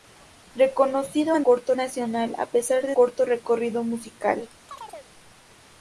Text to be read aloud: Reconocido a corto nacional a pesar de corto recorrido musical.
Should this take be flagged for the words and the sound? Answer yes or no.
yes